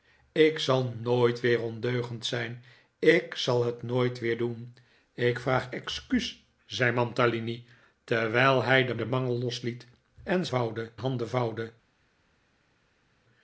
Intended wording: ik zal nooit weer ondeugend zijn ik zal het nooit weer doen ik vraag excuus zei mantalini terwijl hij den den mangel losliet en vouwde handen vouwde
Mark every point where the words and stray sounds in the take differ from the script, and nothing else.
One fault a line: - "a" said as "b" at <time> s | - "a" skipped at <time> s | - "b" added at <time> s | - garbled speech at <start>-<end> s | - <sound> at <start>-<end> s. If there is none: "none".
none